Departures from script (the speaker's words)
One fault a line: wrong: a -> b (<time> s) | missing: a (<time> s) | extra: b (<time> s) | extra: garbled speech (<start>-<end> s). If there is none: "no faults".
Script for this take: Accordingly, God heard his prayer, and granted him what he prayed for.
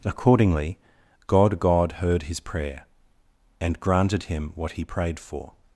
extra: God (1.6 s)